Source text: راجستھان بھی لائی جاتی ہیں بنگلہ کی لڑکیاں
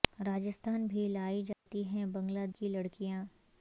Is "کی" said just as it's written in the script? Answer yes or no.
yes